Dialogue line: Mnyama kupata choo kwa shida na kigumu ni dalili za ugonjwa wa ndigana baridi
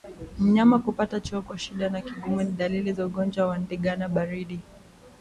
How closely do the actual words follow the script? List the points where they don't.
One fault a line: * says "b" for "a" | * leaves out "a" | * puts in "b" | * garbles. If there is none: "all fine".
all fine